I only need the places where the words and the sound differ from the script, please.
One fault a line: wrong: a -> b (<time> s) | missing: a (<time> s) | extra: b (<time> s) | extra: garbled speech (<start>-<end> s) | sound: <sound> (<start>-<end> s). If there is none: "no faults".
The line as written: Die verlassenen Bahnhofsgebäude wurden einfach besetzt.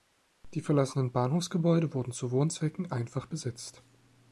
extra: zu Wohnzwecken (2.1 s)